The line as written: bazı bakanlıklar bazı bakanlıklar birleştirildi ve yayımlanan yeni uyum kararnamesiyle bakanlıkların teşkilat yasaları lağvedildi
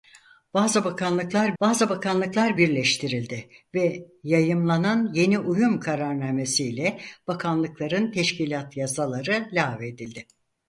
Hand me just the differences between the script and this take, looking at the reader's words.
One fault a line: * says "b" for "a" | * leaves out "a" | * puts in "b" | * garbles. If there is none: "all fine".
all fine